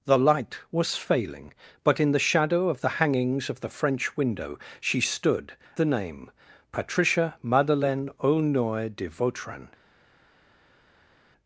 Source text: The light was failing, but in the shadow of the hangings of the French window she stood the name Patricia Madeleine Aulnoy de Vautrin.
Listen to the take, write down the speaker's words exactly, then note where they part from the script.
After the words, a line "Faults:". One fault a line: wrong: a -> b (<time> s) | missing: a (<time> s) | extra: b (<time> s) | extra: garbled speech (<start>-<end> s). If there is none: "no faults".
The light was failing, but in the shadow of the hangings of the French window she stood the name Patricia Madeleine Aulnoy de Vautrin.
Faults:
no faults